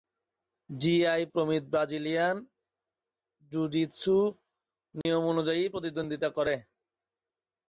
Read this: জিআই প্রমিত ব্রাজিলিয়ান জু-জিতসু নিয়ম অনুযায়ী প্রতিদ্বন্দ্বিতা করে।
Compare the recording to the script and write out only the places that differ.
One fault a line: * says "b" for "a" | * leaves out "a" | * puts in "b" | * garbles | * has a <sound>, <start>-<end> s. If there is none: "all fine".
* has a dropout, 5.0-5.1 s